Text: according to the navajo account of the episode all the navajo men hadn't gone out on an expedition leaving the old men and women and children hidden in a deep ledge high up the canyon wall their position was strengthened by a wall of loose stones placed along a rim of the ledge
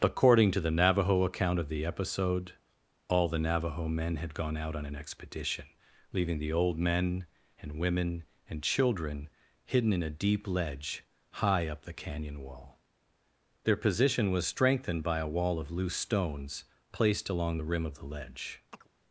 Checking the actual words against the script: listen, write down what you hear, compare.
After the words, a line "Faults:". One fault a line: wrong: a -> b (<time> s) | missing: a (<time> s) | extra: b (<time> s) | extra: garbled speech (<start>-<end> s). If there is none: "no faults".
according to the navajo account of the episode all the navajo men had gone out on an expedition leaving the old men and women and children hidden in a deep ledge high up the canyon wall their position was strengthened by a wall of loose stones placed along the rim of the ledge
Faults:
wrong: hadn't -> had (4.2 s)
wrong: a -> the (17.5 s)